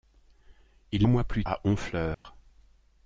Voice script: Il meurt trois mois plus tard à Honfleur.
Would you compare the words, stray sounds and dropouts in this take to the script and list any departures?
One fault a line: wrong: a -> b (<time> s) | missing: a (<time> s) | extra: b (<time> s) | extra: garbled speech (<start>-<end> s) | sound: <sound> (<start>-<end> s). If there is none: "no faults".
missing: meurt trois (1.1 s)
missing: tard (1.4 s)
sound: dropout (2.1-2.2 s)